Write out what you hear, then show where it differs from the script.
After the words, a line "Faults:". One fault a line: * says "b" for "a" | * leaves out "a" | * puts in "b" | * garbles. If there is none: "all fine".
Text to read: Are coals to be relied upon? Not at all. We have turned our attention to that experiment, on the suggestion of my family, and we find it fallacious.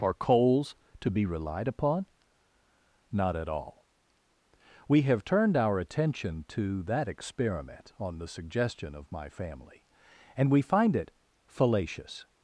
Are coals to be relied upon? Not at all. We have turned our attention to that experiment, on the suggestion of my family, and we find it fallacious.
Faults:
all fine